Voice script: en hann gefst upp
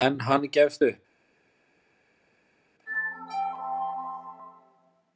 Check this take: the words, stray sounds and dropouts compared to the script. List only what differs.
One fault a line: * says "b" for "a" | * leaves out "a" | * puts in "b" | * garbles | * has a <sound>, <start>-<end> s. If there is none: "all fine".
all fine